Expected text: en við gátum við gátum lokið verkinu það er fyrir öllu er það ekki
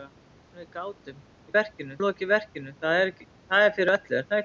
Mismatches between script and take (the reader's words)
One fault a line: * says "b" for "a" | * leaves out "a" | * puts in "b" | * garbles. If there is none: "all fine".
* says "verkinu" for "gátum"